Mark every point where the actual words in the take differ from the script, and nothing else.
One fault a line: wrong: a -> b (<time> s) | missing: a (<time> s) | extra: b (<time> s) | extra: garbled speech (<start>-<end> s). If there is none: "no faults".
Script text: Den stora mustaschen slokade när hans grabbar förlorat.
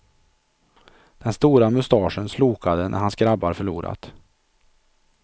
no faults